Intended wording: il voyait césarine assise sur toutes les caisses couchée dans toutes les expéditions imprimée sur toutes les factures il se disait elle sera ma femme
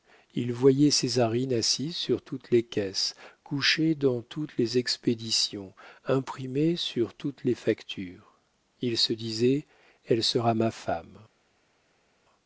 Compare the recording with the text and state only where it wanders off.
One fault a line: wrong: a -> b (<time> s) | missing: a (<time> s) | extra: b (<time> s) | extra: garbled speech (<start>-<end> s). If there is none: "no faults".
no faults